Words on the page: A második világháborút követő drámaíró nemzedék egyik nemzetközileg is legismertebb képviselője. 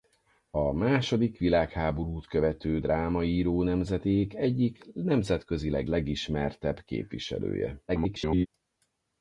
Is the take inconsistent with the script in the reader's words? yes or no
yes